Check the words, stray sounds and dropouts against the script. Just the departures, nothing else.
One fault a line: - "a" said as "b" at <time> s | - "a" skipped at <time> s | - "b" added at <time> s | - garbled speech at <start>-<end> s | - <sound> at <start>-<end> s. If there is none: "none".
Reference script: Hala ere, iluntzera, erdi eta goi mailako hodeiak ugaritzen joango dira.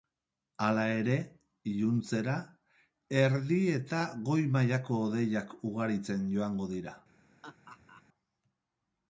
- laugh at 7.4-8.0 s